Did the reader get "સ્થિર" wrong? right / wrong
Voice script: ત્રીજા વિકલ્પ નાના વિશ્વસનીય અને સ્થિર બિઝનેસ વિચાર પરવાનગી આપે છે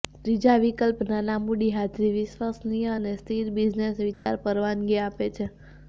right